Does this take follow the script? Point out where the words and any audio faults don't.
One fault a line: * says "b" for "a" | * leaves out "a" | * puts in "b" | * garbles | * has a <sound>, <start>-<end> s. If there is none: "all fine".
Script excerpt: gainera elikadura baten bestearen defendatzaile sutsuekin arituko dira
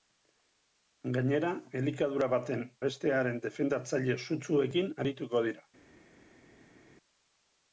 all fine